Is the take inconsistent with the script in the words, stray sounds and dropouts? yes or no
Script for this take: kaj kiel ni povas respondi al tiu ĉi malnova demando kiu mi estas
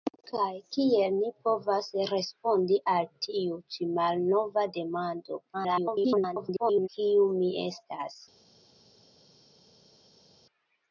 yes